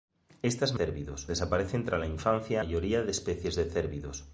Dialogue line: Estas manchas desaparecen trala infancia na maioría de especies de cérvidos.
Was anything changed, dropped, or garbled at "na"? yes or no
yes